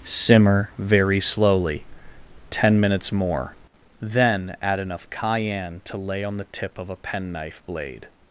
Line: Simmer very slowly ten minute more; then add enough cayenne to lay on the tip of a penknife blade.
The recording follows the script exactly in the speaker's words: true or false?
false